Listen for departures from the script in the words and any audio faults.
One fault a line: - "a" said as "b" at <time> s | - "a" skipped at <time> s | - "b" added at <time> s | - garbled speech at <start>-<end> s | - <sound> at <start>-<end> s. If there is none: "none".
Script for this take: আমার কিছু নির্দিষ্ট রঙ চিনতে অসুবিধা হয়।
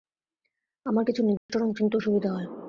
- dropout at 1.4-1.5 s